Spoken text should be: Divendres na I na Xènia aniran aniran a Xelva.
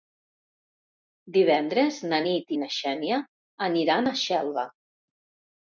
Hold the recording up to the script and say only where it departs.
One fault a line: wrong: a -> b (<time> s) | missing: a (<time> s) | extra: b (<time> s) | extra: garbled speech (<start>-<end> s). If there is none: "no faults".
extra: Nit (2.3 s)
missing: aniran (4.1 s)